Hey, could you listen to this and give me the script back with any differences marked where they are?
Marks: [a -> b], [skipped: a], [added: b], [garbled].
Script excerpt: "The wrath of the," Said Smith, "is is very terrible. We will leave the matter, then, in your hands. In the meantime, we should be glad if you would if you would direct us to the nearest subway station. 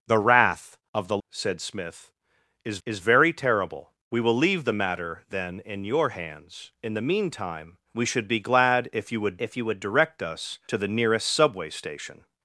"The wrath of the," Said Smith, "is is very terrible. We will leave the matter, then, in your hands. In the meantime, we should be glad if you would if you would direct us to the nearest subway station.